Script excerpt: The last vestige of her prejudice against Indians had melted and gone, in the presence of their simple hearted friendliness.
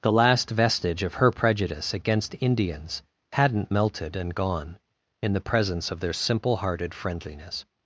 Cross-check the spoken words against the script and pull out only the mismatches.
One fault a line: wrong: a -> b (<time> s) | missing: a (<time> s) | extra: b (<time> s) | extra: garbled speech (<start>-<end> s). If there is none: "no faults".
wrong: had -> hadn't (3.3 s)